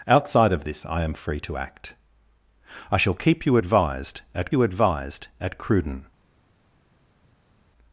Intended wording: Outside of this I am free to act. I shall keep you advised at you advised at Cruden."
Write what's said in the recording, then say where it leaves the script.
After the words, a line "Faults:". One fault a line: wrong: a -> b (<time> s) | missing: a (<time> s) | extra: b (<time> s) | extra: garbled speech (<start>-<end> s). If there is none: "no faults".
Outside of this I am free to act. I shall keep you advised at you advised at Cruden."
Faults:
no faults